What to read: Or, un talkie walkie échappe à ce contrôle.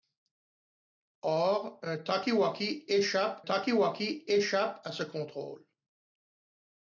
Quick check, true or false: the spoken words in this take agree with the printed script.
false